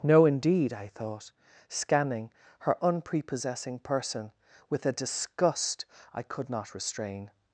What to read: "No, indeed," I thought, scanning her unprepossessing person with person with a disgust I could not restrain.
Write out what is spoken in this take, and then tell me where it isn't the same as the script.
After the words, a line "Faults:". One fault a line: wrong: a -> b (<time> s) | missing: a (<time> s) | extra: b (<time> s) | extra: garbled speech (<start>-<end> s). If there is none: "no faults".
"No, indeed," I thought, scanning her unprepossessing person with a disgust I could not restrain.
Faults:
missing: person with (4.8 s)